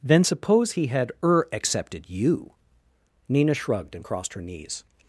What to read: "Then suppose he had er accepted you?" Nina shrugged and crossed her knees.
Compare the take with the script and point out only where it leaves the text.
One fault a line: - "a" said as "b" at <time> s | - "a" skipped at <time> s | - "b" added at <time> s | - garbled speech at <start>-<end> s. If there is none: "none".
none